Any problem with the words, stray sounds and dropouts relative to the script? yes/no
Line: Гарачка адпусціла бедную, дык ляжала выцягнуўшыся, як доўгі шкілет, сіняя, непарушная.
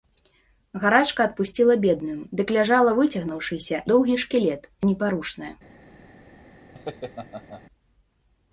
yes